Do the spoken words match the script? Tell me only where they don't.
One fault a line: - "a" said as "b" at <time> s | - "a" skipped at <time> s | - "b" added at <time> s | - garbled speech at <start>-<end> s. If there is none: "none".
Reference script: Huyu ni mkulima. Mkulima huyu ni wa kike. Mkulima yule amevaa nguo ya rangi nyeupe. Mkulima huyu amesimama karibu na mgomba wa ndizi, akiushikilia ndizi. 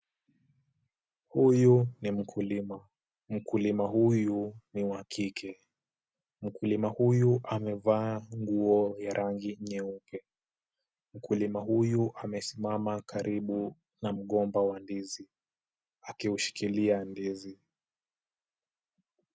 - "yule" said as "huyu" at 6.9 s